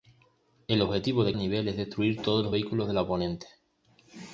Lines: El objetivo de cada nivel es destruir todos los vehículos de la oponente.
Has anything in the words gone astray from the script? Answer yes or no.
yes